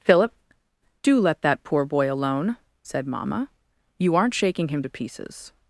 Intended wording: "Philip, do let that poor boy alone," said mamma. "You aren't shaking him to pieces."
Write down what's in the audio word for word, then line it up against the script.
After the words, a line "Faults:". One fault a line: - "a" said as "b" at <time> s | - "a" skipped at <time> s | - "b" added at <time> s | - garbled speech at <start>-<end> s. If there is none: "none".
"Philip, do let that poor boy alone," said mamma. "You aren't shaking him to pieces."
Faults:
none